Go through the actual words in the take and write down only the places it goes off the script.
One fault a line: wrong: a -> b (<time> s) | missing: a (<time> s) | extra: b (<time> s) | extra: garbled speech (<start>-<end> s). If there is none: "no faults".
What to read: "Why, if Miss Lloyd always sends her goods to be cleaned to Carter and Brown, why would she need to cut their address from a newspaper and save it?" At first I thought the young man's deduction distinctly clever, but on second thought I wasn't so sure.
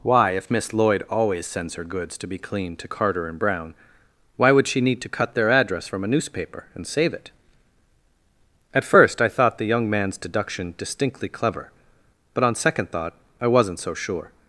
no faults